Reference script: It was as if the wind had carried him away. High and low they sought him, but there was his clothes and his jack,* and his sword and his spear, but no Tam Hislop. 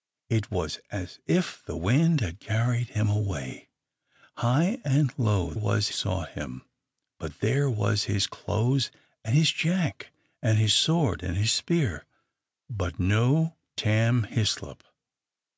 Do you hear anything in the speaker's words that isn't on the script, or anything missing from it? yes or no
yes